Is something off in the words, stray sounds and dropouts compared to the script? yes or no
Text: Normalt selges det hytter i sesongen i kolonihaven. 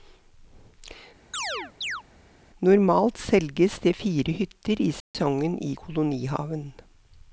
yes